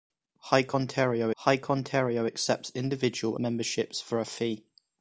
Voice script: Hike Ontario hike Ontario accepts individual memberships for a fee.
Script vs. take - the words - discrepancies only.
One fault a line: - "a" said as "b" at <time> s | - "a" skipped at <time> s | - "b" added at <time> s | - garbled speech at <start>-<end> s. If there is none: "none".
none